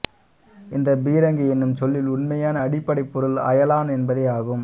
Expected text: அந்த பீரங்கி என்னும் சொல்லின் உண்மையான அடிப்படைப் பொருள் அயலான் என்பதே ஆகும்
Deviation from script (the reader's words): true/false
true